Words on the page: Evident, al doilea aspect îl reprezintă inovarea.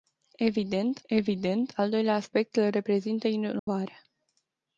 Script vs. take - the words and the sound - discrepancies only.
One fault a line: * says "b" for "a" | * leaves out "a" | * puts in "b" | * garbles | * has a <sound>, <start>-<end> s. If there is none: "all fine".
* puts in "evident"
* has a dropout, 3.6-3.7 s